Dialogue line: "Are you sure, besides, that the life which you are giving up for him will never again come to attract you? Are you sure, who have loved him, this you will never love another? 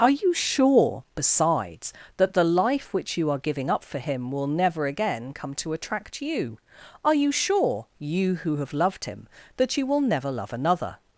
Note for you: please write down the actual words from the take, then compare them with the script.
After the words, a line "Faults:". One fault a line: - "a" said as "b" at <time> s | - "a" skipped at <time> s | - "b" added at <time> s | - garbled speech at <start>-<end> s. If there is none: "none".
"Are you sure, besides, that the life which you are giving up for him will never again come to attract you? Are you sure, you who have loved him, that you will never love another?
Faults:
- "you" added at 8.0 s
- "this" said as "that" at 9.6 s